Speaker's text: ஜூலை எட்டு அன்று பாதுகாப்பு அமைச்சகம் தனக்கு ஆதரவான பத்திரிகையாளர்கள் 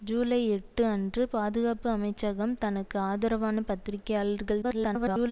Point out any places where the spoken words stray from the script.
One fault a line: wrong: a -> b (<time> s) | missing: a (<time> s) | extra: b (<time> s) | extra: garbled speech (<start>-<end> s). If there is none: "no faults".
extra: garbled speech (4.6-5.3 s)